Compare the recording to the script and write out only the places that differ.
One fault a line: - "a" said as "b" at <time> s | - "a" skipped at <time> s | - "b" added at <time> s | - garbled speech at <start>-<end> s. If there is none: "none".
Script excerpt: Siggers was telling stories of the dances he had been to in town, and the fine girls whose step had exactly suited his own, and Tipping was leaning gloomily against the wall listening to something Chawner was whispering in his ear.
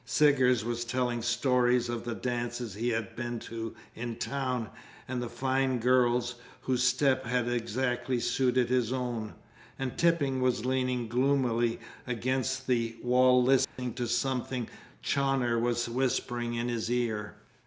none